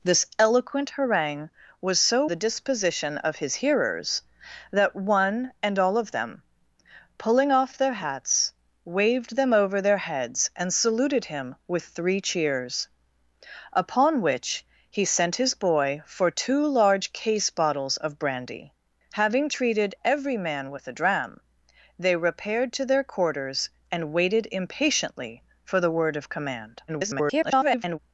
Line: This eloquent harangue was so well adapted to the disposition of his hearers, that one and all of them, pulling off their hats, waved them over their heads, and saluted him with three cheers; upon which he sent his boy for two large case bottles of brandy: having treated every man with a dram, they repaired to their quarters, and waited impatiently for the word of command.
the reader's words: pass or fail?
fail